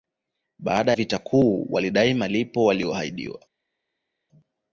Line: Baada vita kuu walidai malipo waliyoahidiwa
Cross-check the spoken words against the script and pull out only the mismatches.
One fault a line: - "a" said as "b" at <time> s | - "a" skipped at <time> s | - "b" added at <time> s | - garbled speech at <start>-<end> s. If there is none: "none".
none